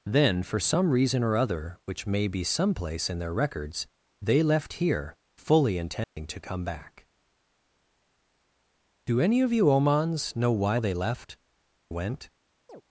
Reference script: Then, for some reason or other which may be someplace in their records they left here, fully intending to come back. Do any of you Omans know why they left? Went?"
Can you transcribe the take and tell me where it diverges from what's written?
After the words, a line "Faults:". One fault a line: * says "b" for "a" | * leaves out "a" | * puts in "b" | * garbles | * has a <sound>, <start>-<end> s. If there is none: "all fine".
Then, for some reason or other which may be someplace in their records they left here, fully intending to come back. Do any of you Omans know why they left? Went?"
Faults:
* has a dropout, 6.0-6.2 s
* has a chirp, 12.7-12.8 s